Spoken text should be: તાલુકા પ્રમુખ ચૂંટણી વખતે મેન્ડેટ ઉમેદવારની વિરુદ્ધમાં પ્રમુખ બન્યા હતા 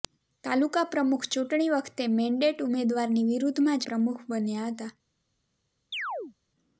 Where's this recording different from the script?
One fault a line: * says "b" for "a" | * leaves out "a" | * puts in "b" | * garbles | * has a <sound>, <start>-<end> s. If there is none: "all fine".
* has a chirp, 5.9-6.3 s